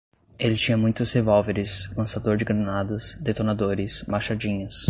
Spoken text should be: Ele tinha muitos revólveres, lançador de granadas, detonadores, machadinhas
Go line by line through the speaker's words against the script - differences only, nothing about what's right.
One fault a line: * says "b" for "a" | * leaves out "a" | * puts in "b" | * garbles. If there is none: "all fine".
all fine